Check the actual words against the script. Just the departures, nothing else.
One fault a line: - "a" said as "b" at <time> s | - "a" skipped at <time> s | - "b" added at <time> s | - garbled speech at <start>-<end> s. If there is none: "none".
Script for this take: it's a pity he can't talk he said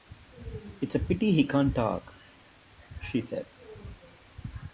- "he" said as "she" at 3.0 s